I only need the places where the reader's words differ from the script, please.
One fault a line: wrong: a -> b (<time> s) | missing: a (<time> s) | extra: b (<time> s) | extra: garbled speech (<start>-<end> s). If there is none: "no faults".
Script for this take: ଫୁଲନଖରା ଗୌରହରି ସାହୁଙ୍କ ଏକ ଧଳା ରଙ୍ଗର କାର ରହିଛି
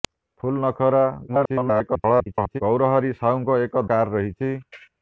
extra: garbled speech (1.3-2.6 s)
missing: ଧଳା ରଙ୍ଗର (3.9 s)